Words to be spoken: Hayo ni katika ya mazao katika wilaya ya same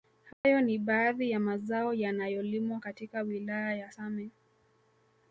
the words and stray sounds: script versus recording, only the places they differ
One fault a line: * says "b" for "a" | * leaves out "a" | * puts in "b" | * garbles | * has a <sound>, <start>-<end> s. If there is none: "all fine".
* has a dropout, 0.3-0.4 s
* says "baadhi" for "katika"
* puts in "yanayolimwa"